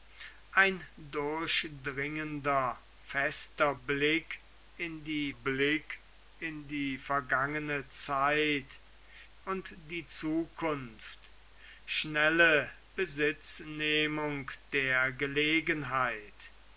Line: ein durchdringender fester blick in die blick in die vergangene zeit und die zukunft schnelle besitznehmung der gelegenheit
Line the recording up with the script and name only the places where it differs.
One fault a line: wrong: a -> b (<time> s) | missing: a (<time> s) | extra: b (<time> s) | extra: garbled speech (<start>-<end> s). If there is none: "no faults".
no faults